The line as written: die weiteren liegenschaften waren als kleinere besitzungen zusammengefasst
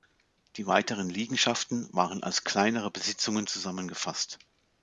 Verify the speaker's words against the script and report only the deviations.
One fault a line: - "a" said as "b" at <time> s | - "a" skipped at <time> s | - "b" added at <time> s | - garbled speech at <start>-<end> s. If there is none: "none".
none